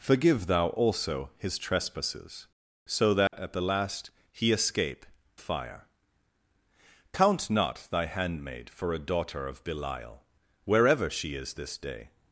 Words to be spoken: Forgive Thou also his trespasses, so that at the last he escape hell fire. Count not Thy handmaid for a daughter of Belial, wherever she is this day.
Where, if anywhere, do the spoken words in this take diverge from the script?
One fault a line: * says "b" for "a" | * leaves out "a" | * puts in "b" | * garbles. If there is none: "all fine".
* leaves out "hell"